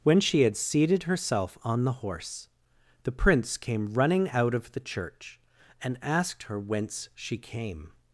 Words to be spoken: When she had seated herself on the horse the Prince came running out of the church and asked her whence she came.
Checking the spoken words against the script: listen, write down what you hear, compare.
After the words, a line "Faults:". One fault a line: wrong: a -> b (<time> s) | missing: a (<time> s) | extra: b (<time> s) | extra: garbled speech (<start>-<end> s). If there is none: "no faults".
When she had seated herself on the horse the Prince came running out of the church and asked her whence she came.
Faults:
no faults